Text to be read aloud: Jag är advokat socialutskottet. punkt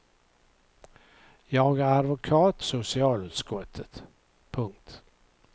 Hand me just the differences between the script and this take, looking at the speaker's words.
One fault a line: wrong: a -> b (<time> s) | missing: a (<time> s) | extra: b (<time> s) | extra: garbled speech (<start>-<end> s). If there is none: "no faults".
no faults